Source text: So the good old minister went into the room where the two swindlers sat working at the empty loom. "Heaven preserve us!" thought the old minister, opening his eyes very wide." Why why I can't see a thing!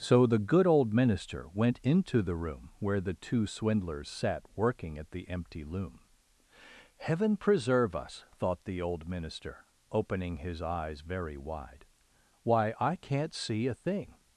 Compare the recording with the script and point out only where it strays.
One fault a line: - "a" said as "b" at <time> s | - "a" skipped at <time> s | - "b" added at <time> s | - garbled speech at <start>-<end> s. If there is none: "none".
- "why" skipped at 12.7 s